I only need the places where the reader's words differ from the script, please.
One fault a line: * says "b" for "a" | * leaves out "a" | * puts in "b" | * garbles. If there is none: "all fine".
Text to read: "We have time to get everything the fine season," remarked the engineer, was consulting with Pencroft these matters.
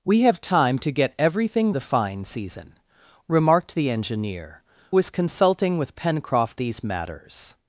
all fine